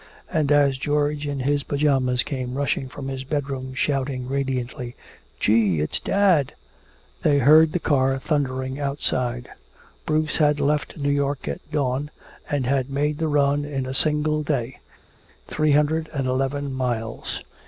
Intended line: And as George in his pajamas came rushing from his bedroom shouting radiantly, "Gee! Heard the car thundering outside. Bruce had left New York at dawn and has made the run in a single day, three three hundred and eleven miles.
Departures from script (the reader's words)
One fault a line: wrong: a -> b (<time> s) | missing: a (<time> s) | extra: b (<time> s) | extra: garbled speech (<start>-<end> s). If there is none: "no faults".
extra: It's dad they (5.8 s)
wrong: has -> had (12.7 s)
missing: three (15.7 s)